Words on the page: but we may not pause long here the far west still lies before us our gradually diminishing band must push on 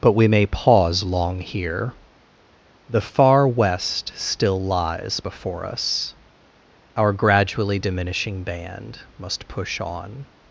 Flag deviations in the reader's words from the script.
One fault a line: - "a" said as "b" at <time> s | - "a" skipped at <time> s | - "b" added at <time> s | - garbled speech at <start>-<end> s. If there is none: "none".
- "not" skipped at 0.5 s